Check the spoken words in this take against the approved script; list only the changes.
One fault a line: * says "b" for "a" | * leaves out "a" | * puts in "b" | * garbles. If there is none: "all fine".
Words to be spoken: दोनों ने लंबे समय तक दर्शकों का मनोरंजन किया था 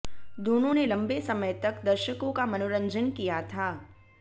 all fine